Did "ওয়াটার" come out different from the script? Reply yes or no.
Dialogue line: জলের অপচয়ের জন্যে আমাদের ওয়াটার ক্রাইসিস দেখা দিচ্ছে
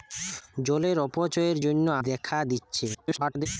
yes